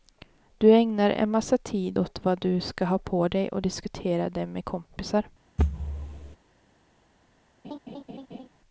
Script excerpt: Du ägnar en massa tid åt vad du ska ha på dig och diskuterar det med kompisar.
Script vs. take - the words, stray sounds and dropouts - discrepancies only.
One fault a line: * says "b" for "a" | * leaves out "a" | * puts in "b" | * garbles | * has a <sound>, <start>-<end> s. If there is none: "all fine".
* has a thud, 5.6-6.4 s
* has a laugh, 7.6-8.5 s